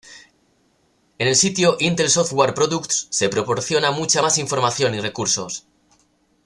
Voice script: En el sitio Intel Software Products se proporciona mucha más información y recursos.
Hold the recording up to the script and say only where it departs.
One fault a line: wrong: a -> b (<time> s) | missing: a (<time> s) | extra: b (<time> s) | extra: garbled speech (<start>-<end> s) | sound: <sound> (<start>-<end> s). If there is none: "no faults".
no faults